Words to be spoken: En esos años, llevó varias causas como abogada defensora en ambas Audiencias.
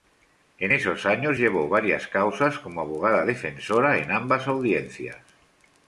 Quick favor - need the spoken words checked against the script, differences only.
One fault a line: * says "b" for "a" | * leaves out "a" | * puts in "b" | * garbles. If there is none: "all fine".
all fine